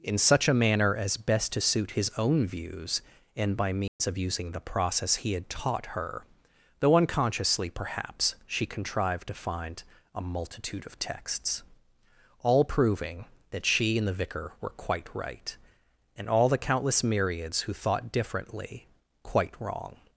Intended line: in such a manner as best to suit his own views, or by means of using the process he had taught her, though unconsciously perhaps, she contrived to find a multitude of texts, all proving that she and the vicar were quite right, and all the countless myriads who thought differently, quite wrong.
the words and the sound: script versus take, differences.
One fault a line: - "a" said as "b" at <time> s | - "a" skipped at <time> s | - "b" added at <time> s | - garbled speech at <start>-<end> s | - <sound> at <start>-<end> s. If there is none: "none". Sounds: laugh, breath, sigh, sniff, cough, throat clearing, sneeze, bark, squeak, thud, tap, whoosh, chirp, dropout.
- "or" said as "and" at 3.3 s
- dropout at 3.9-4.0 s